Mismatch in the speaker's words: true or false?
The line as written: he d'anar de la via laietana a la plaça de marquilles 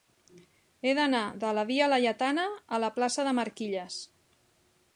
false